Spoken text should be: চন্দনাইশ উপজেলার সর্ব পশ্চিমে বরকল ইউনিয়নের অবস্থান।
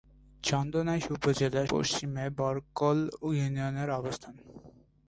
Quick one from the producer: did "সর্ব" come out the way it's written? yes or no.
no